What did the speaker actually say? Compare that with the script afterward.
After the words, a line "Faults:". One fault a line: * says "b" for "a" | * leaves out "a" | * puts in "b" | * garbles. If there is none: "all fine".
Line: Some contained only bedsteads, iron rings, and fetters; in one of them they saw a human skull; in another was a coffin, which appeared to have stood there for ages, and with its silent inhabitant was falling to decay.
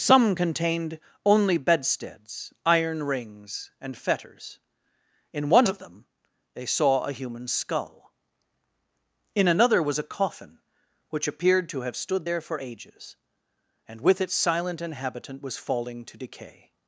Some contained only bedsteads, iron rings, and fetters; in one of them they saw a human skull; in another was a coffin, which appeared to have stood there for ages, and with its silent inhabitant was falling to decay.
Faults:
all fine